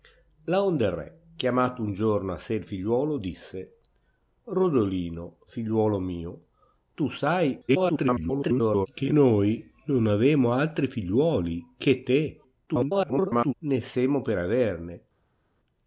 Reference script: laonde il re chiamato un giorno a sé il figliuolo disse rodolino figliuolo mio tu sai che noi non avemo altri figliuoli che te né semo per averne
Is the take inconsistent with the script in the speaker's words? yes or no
yes